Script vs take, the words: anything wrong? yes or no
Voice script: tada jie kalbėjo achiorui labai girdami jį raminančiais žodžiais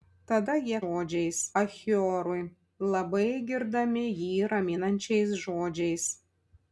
yes